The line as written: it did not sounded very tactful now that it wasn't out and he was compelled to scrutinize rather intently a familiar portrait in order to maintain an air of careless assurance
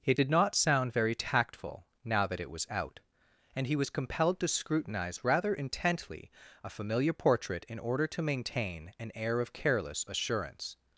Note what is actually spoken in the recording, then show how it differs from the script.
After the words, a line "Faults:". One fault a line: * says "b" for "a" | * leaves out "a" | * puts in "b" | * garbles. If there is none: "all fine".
it did not sound very tactful now that it was out and he was compelled to scrutinize rather intently a familiar portrait in order to maintain an air of careless assurance
Faults:
* says "sound" for "sounded"
* says "was" for "wasn't"